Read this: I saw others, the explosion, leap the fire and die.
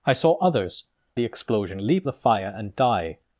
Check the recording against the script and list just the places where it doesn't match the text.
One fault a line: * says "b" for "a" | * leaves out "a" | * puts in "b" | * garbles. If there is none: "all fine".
all fine